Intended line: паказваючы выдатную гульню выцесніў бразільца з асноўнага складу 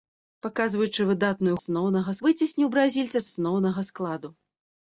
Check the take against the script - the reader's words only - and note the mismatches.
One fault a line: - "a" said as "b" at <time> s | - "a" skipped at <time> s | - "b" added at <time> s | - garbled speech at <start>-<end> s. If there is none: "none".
- "гульню" said as "асноўнага" at 1.6 s
- "з" skipped at 3.2 s